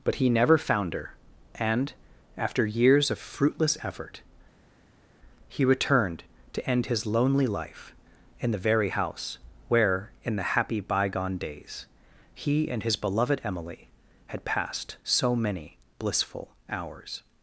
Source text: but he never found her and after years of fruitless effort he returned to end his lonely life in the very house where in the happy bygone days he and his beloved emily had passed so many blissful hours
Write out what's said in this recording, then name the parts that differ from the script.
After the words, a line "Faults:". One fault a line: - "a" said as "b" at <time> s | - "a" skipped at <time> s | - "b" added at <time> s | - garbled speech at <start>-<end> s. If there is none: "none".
but he never found her and after years of fruitless effort he returned to end his lonely life in the very house where in the happy bygone days he and his beloved emily had passed so many blissful hours
Faults:
none